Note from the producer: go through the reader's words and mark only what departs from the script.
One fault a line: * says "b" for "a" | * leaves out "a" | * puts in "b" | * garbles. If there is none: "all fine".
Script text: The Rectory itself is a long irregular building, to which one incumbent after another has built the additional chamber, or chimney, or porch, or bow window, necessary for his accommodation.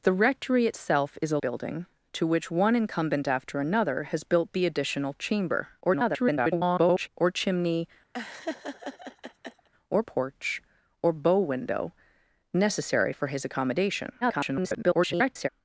* leaves out "long irregular"
* garbles
* garbles